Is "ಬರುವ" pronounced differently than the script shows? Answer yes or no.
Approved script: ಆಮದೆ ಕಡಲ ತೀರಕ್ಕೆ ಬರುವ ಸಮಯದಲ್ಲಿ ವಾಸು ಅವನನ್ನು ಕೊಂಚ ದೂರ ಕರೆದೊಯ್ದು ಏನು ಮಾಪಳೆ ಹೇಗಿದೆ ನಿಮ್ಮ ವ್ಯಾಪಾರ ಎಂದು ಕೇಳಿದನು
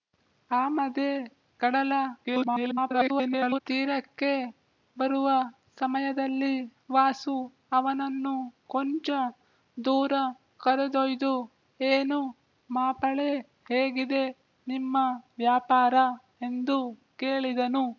no